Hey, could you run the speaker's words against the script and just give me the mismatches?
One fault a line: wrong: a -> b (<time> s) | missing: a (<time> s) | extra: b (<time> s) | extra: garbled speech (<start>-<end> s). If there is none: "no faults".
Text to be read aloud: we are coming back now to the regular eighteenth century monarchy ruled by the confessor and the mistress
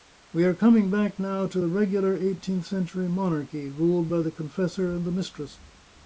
no faults